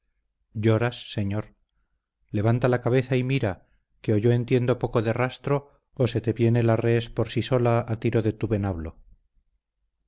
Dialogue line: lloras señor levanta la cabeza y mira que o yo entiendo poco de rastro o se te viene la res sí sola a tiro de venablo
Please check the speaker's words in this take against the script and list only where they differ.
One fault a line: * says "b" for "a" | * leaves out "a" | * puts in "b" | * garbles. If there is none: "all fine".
* puts in "por"
* puts in "tu"